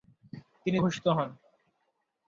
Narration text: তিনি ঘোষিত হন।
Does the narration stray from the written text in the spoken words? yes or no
no